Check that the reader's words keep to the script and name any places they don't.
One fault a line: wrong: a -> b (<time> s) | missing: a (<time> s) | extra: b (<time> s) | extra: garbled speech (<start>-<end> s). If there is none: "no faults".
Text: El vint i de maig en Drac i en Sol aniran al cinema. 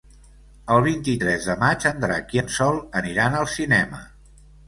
extra: tres (1.2 s)